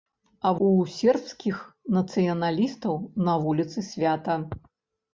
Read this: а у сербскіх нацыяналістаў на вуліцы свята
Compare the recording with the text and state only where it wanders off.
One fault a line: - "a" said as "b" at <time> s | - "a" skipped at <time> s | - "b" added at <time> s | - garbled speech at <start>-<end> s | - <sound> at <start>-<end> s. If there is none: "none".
none